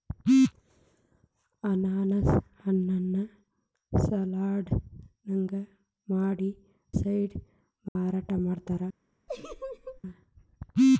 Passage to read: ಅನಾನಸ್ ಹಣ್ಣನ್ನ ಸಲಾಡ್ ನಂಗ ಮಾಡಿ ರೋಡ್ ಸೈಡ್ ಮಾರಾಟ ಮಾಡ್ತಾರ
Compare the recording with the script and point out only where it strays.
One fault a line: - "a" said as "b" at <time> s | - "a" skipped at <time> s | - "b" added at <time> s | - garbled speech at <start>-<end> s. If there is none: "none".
- "ರೋಡ್" skipped at 6.5 s